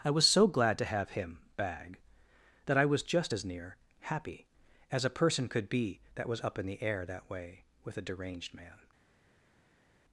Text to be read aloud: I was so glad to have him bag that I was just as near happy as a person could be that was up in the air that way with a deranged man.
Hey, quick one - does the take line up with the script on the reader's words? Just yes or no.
yes